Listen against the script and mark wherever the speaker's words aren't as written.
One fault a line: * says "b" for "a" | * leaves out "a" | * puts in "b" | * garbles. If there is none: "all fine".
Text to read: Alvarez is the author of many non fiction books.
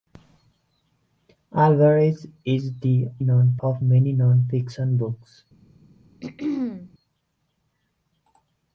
* says "non" for "author"